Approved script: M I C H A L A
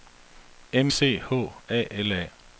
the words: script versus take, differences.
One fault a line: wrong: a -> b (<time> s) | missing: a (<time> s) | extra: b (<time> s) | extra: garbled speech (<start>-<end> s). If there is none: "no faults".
missing: I (0.9 s)